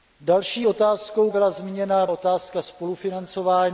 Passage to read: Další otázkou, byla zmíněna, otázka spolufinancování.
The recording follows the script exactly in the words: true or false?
true